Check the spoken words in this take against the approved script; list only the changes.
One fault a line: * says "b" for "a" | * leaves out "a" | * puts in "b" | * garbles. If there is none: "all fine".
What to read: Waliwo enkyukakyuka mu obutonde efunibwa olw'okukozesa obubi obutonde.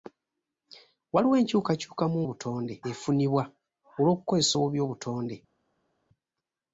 all fine